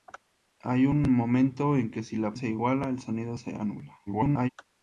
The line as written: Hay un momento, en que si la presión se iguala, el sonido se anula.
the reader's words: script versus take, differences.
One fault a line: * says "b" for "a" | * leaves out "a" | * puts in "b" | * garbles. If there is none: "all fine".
* leaves out "presión"
* garbles